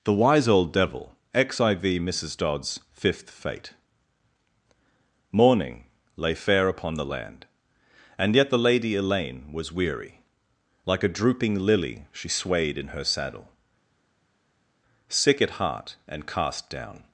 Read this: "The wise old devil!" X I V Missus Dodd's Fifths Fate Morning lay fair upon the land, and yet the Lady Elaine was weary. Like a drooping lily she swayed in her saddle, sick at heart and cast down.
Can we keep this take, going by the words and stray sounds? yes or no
no